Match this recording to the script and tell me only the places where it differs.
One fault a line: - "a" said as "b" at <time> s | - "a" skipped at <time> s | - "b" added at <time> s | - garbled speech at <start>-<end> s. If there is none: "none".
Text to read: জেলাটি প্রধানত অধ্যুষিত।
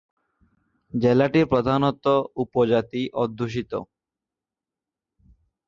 - "উপজাতি" added at 2.4 s